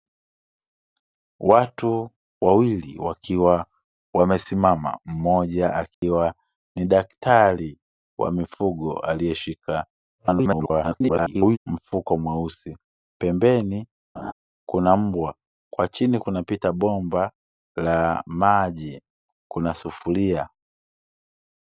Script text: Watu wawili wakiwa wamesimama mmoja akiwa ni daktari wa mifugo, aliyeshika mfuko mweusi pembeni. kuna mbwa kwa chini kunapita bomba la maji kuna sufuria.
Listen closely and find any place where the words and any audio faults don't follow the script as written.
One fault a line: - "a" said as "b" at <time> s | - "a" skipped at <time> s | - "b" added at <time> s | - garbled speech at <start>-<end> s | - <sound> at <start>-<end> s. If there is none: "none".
- dropout at 5.9-6.0 s
- garbled speech at 10.2-11.6 s
- laugh at 14.2-14.3 s